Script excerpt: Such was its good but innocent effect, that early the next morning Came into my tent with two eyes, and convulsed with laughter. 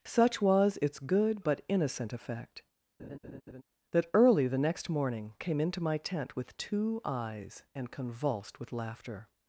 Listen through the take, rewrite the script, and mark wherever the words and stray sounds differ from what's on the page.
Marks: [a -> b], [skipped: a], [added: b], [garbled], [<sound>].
Such was its good but innocent effect, [laugh] that early the next morning Came into my tent with two eyes, and convulsed with laughter.